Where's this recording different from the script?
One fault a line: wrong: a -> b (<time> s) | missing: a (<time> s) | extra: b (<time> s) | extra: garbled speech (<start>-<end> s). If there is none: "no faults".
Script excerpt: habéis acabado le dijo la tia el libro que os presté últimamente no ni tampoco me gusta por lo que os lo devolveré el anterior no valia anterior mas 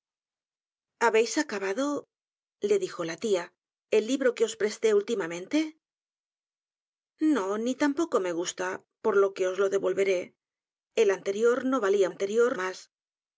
no faults